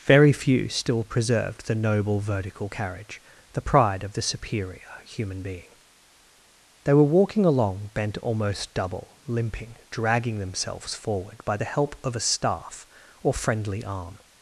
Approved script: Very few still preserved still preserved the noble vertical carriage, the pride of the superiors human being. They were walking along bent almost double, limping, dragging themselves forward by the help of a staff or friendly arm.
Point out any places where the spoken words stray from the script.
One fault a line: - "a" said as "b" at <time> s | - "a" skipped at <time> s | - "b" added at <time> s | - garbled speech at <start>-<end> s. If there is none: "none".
- "still preserved" skipped at 1.7 s
- "superiors" said as "superior" at 4.2 s